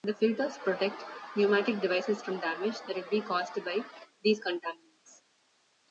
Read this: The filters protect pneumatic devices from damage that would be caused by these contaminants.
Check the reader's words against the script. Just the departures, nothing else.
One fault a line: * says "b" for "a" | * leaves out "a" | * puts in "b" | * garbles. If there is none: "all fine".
all fine